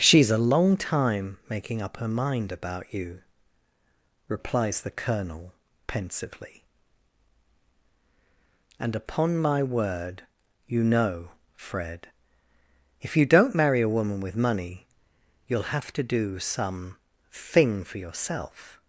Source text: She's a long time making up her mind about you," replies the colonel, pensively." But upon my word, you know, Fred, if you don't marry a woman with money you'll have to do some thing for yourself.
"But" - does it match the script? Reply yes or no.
no